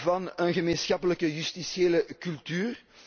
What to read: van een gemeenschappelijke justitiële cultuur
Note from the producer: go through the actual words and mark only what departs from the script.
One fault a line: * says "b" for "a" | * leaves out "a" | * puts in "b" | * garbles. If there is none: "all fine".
all fine